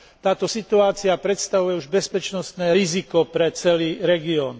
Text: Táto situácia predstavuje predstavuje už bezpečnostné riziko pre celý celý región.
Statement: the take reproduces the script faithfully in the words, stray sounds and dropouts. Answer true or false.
false